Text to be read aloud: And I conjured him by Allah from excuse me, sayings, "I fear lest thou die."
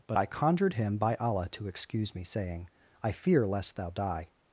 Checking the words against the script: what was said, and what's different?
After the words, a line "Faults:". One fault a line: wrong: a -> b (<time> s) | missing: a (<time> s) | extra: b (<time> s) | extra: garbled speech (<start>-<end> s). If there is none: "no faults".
But I conjured him by Allah to excuse me, saying, "I fear lest thou die."
Faults:
wrong: And -> But (0.1 s)
wrong: from -> to (1.5 s)
wrong: sayings -> saying (2.2 s)